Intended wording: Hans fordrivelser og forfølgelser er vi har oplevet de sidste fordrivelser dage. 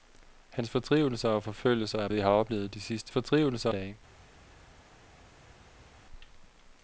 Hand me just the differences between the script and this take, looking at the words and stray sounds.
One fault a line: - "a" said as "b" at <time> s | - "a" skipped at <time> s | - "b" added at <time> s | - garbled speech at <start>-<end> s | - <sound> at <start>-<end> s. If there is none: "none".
none